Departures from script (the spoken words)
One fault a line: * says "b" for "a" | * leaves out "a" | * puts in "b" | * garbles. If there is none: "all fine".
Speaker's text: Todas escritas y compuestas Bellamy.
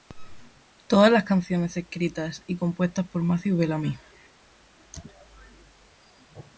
* puts in "las canciones"
* puts in "por Matthew"